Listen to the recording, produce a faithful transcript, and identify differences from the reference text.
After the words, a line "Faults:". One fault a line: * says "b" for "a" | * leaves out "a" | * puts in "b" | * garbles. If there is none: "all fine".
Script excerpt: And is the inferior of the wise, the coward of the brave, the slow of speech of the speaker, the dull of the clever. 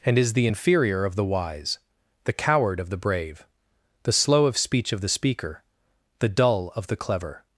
And is the inferior of the wise, the coward of the brave, the slow of speech of the speaker, the dull of the clever.
Faults:
all fine